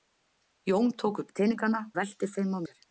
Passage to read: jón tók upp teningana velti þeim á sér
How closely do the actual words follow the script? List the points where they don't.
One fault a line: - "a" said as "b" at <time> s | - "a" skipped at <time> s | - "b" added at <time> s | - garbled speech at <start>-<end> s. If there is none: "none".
none